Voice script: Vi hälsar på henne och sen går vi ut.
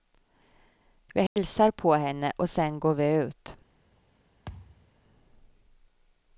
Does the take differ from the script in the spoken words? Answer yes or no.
no